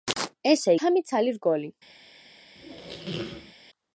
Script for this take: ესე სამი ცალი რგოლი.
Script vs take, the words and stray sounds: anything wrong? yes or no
yes